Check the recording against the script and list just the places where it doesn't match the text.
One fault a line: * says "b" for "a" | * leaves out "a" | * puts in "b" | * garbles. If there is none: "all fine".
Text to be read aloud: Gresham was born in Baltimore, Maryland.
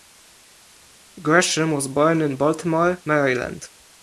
all fine